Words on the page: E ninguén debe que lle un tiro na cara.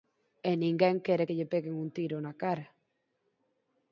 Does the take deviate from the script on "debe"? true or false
true